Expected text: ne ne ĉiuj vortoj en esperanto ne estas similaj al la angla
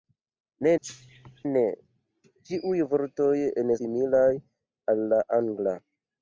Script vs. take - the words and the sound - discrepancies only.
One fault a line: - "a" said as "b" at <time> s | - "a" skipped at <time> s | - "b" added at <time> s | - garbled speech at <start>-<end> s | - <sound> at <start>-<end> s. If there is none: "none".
- cough at 0.8-1.4 s
- "esperanto ne estas" skipped at 3.7 s